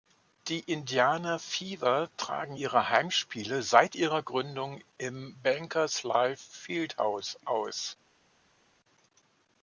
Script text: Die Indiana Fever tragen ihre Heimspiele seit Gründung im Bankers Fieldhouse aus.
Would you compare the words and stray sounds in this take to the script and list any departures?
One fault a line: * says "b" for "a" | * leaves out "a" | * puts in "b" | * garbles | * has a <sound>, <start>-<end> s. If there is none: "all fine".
* puts in "ihrer"
* puts in "Life"